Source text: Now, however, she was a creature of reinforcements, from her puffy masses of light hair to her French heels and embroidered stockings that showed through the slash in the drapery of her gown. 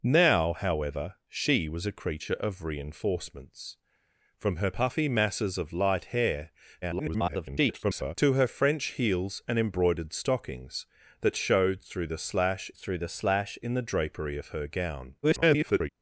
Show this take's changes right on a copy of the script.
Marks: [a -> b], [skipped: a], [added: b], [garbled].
Now, however, she was a creature of reinforcements, from her puffy masses of light hair [garbled] to her French heels and embroidered stockings that showed through the slash [added: through the slash] in the drapery of her gown. [garbled]